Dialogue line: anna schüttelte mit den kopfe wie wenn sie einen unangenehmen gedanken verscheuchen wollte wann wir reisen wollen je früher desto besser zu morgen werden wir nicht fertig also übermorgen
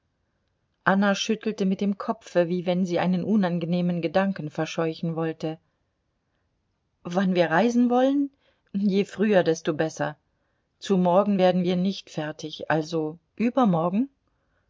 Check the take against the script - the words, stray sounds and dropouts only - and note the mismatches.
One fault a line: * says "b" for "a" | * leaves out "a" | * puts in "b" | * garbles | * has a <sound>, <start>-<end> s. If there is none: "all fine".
* says "dem" for "den"